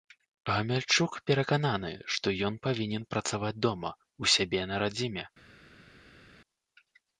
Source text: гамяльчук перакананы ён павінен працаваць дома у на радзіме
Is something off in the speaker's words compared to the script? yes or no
yes